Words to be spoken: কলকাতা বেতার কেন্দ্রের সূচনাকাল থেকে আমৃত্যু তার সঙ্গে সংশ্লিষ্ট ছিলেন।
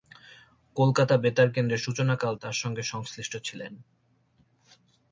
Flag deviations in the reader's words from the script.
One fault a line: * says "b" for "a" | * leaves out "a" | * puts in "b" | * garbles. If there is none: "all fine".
* leaves out "থেকে আমৃত্যু"